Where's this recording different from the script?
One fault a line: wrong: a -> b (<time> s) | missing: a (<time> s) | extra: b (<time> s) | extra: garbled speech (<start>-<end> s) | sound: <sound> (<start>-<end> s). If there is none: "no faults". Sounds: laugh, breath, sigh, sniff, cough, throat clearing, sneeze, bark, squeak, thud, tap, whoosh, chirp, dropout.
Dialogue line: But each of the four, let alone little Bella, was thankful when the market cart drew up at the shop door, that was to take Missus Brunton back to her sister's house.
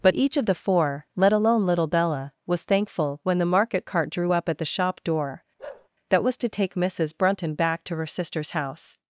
sound: bark (5.6-5.9 s)